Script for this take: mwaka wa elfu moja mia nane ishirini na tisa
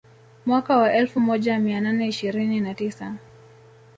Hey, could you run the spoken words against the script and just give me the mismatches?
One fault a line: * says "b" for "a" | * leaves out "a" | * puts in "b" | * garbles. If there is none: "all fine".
all fine